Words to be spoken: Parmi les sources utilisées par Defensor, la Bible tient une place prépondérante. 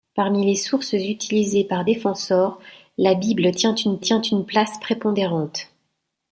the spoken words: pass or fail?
fail